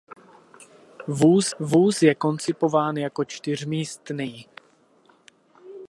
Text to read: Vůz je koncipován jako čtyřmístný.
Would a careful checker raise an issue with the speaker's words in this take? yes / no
yes